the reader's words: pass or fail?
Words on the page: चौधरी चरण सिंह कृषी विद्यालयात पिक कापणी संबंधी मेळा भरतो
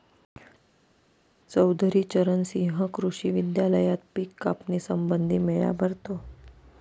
pass